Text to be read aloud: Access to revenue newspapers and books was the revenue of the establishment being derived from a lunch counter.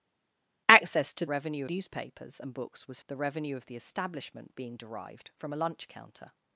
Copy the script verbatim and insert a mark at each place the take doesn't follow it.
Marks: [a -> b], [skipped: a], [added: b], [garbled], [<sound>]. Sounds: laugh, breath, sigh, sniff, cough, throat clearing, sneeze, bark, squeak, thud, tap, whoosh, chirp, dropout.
Access to revenue newspapers and books was the revenue of the establishment being derived from a lunch counter.